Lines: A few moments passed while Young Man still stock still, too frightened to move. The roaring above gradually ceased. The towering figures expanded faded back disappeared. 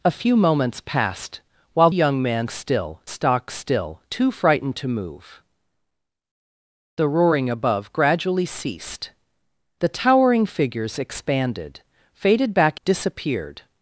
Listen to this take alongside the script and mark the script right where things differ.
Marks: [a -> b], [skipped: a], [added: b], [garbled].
A few moments passed while Young Man still stock still, too frightened to move. The roaring above gradually ceased. The towering figures expanded faded back disappeared.